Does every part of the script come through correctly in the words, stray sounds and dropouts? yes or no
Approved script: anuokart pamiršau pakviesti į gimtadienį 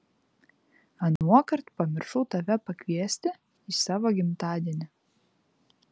no